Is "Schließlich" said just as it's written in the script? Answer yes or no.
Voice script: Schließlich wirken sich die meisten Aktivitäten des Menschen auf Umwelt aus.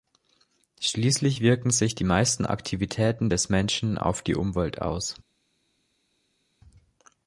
yes